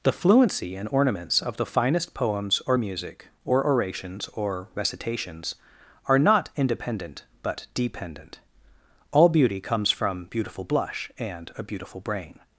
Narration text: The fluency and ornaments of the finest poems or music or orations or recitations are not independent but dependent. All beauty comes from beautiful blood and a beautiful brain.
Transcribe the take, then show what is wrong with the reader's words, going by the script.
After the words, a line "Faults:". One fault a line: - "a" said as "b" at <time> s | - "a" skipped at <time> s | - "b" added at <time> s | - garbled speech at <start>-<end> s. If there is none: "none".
The fluency and ornaments of the finest poems or music or orations or recitations are not independent but dependent. All beauty comes from beautiful blush and a beautiful brain.
Faults:
- "blood" said as "blush" at 10.6 s